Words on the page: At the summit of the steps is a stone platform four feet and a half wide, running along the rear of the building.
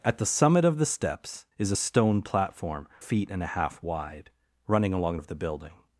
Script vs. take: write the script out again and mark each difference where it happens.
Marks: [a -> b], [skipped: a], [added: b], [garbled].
At the summit of the steps is a stone platform [skipped: four] feet and a half wide, running along [skipped: the rear] of the building.